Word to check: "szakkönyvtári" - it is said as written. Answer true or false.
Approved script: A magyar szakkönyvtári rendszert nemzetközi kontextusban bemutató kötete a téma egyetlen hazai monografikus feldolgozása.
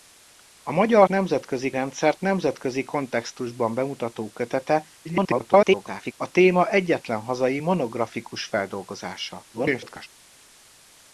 false